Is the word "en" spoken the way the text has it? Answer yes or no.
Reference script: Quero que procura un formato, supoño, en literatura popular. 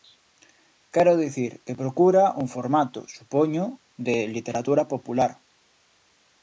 no